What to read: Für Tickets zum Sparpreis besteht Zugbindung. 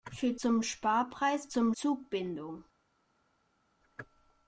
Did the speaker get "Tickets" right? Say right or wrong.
wrong